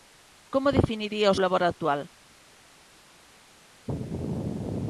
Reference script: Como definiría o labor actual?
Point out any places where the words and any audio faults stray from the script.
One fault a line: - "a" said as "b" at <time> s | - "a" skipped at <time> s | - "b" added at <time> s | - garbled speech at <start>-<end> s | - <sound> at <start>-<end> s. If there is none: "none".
none